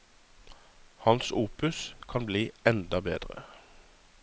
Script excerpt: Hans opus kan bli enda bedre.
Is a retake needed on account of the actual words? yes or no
no